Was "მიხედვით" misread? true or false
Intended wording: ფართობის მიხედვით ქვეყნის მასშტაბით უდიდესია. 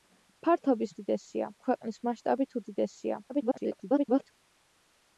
true